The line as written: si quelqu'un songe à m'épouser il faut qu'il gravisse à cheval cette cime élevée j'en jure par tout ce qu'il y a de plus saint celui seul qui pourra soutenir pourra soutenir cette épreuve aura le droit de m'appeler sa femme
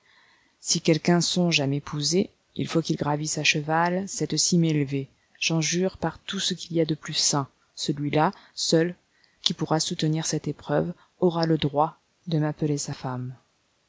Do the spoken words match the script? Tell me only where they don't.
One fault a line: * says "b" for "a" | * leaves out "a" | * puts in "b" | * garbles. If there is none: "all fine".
* puts in "là"
* leaves out "pourra soutenir"